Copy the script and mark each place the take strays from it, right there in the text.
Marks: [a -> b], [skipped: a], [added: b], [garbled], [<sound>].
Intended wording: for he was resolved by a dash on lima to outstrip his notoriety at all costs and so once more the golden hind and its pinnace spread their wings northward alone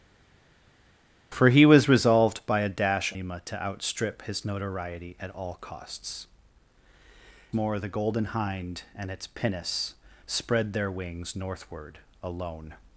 for he was resolved by a dash [skipped: on] lima to outstrip his notoriety at all costs [skipped: and so once] more the golden hind and its pinnace spread their wings northward alone